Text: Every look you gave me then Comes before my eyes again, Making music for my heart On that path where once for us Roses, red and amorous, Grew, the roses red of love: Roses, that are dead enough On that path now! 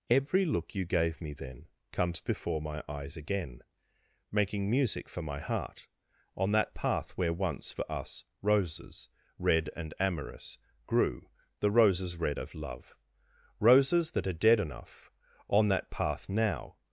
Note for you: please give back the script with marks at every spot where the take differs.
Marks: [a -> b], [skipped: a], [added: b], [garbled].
Every look you gave me then Comes before my eyes again, Making music for my heart On that path where once for us Roses, red and amorous, Grew, the roses red of love: Roses, that are dead enough On that path now!